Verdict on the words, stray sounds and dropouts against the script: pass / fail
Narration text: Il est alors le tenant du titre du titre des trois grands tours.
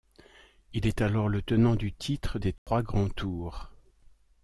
fail